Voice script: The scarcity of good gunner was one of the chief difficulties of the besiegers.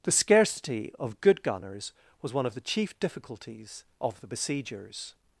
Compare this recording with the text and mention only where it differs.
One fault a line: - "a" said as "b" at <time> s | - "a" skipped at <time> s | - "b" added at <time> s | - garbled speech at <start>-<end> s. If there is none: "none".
- "gunner" said as "gunners" at 1.4 s